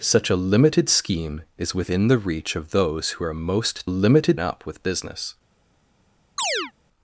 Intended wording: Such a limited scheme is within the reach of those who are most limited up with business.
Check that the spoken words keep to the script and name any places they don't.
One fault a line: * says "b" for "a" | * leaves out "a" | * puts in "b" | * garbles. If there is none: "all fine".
all fine